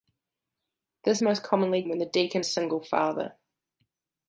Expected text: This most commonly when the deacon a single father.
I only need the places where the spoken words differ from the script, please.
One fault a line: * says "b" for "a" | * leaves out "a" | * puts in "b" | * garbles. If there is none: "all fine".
all fine